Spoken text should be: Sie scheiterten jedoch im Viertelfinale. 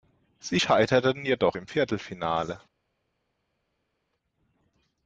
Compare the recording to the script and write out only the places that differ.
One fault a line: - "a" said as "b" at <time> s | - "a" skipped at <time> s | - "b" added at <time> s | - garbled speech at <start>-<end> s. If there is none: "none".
none